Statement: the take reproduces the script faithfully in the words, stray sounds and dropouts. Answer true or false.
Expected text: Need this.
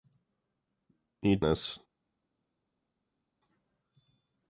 true